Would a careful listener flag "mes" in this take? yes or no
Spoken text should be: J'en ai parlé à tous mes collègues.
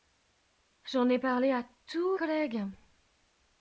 yes